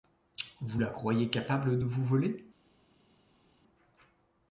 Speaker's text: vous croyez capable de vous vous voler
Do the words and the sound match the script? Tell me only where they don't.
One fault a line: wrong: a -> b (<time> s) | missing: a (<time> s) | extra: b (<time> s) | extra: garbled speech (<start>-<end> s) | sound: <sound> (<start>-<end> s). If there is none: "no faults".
extra: la (0.8 s)
missing: vous (2.0 s)